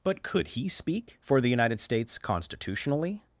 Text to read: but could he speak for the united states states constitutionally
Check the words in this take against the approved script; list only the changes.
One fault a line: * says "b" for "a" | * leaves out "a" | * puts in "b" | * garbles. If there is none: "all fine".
* leaves out "states"